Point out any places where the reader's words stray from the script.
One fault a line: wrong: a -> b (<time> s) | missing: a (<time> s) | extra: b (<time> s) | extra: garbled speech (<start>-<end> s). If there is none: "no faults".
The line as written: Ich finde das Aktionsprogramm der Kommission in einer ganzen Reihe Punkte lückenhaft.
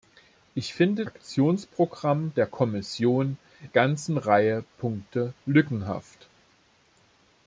missing: das (1.1 s)
missing: in einer (3.4 s)